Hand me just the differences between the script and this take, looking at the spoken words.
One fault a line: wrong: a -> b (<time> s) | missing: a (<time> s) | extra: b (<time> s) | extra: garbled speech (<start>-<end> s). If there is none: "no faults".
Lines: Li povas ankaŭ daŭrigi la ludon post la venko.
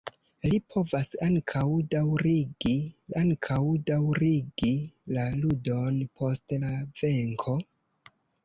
extra: ankaŭ daŭrigi (3.2 s)